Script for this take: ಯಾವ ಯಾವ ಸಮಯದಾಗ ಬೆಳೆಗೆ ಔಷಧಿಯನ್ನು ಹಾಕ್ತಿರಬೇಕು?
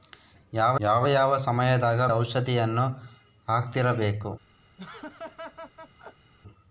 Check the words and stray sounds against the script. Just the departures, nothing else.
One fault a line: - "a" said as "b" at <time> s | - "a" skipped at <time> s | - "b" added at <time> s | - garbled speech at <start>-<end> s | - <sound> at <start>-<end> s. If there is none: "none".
- "ಯಾವ" added at 1.1 s
- "ಬೆಳೆಗೆ" skipped at 2.0 s
- laugh at 4.8-6.3 s